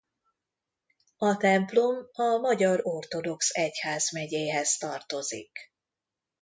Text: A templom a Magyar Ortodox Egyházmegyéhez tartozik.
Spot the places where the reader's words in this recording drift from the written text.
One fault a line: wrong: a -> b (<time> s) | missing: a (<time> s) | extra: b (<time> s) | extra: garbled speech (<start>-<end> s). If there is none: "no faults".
no faults